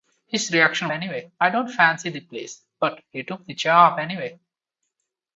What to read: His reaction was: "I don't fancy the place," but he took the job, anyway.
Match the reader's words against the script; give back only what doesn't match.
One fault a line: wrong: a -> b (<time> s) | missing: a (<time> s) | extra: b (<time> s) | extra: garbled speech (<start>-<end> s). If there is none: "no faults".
wrong: was -> anyway (0.9 s)